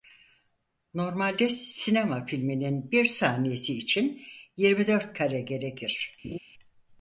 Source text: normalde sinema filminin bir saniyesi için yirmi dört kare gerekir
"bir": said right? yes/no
yes